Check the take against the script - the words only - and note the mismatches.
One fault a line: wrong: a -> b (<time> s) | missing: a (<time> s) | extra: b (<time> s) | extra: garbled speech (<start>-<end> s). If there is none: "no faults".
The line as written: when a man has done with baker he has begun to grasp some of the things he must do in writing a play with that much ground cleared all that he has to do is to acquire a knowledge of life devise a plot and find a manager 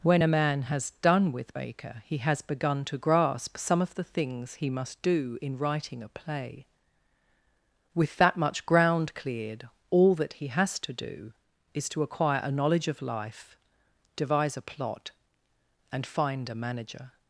no faults